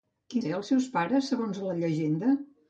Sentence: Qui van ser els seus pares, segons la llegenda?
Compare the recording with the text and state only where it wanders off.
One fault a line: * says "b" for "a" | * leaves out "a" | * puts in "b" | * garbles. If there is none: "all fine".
* leaves out "van"